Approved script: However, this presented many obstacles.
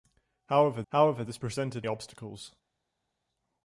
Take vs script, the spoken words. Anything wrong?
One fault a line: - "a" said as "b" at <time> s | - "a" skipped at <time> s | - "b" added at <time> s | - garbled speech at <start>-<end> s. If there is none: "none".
- "however" added at 0.9 s
- "many" skipped at 1.8 s